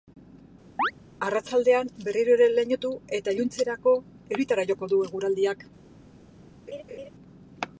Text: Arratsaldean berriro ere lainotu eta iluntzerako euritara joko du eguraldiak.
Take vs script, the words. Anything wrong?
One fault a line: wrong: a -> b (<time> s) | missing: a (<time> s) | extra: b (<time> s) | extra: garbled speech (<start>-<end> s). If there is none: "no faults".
no faults